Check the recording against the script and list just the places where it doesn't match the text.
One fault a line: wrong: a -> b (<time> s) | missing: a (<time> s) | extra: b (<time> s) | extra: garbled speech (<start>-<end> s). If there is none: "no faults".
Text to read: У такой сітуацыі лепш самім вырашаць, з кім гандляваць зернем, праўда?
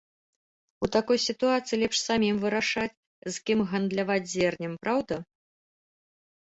no faults